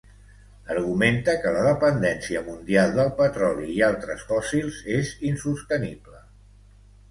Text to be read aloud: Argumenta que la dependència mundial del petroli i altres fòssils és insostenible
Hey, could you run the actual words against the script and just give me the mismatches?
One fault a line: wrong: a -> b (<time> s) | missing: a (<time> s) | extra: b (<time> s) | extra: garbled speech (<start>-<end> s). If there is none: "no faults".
no faults